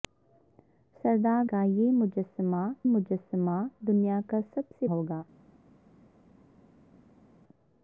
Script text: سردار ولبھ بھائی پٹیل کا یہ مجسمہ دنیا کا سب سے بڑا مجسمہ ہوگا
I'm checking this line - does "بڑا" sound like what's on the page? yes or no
no